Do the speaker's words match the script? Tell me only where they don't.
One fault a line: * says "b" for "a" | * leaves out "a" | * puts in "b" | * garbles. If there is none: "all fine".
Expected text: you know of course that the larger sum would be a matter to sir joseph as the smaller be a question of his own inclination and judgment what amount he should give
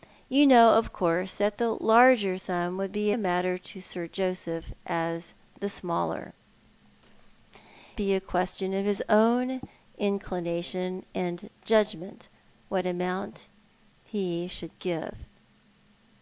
all fine